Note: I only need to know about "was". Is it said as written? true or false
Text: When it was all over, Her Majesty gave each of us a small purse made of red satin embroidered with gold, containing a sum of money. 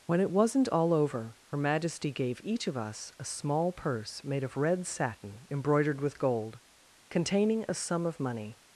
false